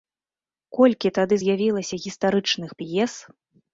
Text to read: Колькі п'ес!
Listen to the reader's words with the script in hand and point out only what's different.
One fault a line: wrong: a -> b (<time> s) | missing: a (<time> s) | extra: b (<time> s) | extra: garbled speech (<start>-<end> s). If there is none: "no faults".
extra: тады з'явілася гістарычных (1.2 s)